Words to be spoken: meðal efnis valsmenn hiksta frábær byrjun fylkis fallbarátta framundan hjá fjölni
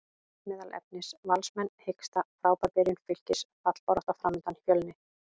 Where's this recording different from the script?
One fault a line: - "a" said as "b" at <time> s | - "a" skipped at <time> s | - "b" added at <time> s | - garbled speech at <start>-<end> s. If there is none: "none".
- "hjá" skipped at 4.6 s